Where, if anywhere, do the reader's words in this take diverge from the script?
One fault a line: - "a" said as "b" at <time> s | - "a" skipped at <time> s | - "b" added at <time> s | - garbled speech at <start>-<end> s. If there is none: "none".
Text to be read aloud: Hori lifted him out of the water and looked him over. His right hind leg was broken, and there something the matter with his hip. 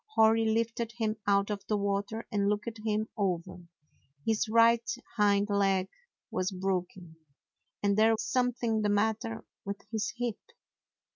none